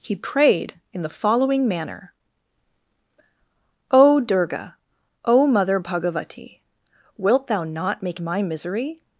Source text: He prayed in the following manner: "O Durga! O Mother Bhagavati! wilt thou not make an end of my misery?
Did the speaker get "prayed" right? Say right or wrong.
right